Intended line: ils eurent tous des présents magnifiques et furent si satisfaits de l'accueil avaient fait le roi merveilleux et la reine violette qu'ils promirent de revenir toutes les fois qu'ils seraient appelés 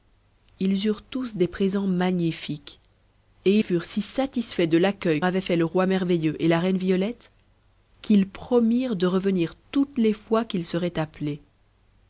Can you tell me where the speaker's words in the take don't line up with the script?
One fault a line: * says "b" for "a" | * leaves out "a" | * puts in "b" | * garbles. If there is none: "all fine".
all fine